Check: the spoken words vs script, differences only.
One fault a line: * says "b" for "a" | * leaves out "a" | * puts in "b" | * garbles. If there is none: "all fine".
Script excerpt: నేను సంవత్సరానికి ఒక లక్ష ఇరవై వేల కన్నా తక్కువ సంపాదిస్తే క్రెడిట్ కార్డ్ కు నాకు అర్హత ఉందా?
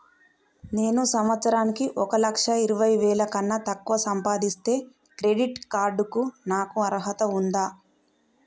all fine